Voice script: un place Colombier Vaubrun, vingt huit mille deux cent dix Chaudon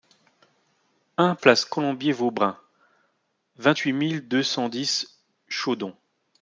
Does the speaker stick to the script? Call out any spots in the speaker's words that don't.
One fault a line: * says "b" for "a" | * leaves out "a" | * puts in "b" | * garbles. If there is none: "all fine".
all fine